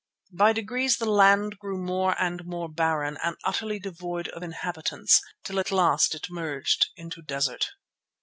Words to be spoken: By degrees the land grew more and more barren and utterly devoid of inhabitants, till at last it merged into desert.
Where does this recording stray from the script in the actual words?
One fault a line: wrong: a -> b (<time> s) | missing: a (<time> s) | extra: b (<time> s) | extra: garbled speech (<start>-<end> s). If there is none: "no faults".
no faults